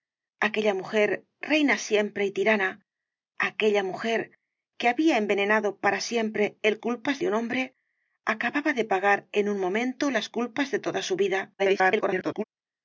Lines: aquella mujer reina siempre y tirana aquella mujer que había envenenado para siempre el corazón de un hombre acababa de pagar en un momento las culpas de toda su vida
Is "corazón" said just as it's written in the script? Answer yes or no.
no